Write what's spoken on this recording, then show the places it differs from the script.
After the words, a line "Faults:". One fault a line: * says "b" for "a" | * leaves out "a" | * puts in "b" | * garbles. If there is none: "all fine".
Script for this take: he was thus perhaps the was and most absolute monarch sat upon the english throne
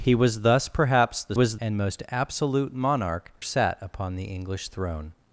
he was thus perhaps the was and most absolute monarch sat upon the english throne
Faults:
all fine